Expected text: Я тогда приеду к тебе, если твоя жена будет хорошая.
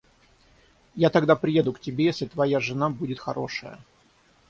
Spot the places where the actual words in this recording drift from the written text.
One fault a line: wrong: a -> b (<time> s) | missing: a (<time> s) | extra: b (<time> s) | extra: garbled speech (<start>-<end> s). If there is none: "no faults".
no faults